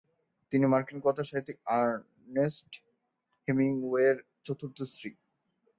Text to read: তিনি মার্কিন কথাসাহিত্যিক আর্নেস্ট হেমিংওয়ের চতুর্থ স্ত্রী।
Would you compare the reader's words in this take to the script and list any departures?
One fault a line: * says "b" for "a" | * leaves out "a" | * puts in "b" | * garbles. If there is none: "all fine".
all fine